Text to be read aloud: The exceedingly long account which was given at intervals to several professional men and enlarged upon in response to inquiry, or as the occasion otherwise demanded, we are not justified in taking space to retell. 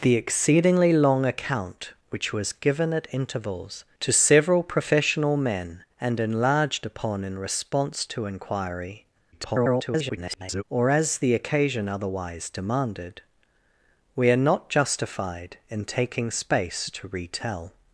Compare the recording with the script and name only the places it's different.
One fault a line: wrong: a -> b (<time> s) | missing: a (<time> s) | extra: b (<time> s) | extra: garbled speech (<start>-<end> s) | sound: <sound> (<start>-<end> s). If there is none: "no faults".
extra: garbled speech (9.3-10.6 s)